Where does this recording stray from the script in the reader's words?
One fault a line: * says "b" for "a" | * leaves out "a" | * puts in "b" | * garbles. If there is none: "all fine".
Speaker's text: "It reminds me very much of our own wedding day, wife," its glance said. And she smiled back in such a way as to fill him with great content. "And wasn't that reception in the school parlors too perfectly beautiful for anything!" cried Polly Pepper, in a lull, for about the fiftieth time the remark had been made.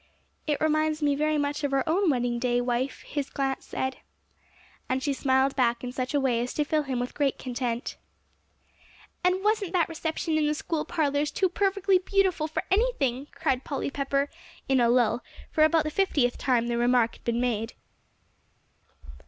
* says "his" for "its"